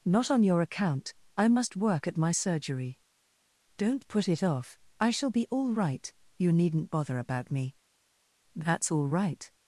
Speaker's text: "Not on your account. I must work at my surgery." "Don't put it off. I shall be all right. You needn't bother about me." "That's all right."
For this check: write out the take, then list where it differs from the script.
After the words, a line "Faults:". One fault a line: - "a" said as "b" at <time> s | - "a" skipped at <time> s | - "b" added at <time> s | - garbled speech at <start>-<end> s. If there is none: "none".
"Not on your account. I must work at my surgery." "Don't put it off. I shall be all right. You needn't bother about me." "That's all right."
Faults:
none